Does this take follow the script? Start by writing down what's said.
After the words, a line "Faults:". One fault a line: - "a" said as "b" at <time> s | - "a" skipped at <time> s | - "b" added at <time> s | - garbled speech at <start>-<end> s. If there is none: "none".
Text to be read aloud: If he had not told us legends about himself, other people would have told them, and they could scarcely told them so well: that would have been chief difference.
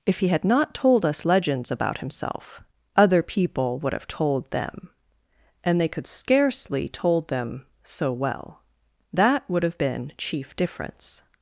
If he had not told us legends about himself, other people would have told them, and they could scarcely told them so well: that would have been chief difference.
Faults:
none